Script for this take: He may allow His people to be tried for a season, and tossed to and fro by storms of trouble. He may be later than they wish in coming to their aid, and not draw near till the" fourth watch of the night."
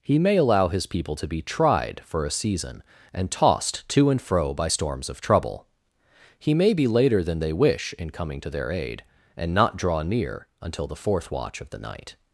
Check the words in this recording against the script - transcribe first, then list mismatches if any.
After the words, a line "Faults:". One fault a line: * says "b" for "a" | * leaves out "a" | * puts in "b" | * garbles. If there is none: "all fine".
He may allow His people to be tried for a season, and tossed to and fro by storms of trouble. He may be later than they wish in coming to their aid, and not draw near until the" fourth watch of the night."
Faults:
* says "until" for "till"